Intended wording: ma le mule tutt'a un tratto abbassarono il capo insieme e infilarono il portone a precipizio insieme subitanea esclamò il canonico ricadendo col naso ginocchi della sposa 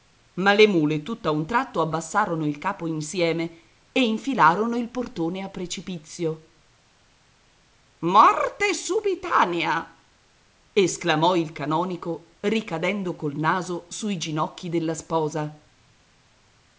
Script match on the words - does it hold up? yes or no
no